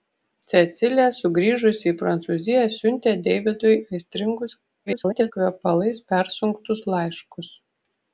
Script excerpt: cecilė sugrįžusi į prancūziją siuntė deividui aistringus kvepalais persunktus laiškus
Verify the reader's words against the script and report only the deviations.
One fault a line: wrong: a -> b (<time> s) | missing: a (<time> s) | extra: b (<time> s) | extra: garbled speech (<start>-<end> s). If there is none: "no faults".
extra: garbled speech (4.9-5.3 s)